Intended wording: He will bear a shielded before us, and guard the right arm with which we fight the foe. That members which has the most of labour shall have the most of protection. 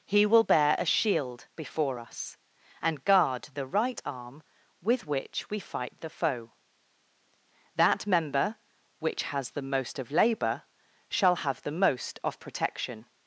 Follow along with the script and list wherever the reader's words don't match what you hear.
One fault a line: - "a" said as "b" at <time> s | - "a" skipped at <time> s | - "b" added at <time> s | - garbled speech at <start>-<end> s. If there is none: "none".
- "shielded" said as "shield" at 0.8 s
- "members" said as "member" at 8.1 s